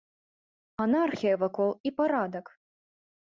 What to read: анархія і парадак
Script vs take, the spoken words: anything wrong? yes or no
yes